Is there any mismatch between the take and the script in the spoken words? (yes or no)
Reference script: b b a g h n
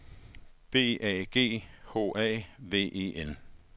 yes